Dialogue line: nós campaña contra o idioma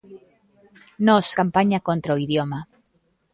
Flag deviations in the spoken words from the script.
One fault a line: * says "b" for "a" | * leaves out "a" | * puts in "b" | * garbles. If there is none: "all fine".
all fine